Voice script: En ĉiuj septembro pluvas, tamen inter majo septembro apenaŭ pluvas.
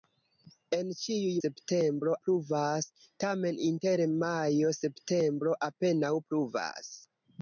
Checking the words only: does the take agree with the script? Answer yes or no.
yes